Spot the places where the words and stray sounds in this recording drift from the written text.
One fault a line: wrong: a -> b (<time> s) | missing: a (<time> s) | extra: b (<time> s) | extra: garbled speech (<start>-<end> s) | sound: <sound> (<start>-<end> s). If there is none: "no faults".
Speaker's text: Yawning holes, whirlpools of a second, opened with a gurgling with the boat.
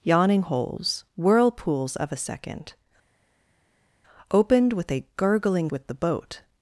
no faults